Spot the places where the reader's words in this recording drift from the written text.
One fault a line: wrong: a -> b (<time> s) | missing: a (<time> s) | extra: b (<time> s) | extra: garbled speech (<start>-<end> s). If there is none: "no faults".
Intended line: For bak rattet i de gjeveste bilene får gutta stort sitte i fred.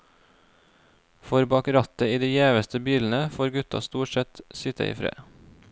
extra: sett (4.1 s)